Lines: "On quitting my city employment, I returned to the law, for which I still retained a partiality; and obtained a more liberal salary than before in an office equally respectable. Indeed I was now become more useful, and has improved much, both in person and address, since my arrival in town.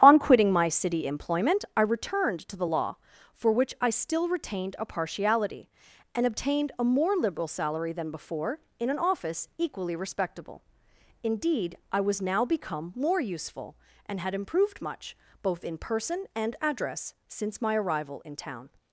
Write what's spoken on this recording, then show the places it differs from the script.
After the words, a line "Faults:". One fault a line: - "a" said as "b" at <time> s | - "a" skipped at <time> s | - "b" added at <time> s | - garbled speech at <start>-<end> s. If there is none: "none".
"On quitting my city employment, I returned to the law, for which I still retained a partiality; and obtained a more liberal salary than before in an office equally respectable. Indeed I was now become more useful, and had improved much, both in person and address, since my arrival in town.
Faults:
- "has" said as "had" at 14.2 s